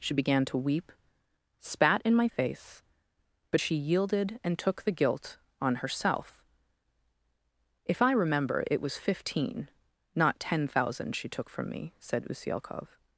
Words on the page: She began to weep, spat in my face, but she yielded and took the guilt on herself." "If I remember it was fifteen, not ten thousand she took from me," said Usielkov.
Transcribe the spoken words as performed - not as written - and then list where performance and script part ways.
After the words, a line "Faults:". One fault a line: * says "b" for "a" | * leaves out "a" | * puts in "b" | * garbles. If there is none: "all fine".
She began to weep, spat in my face, but she yielded and took the guilt on herself." "If I remember it was fifteen, not ten thousand she took from me," said Usielkov.
Faults:
all fine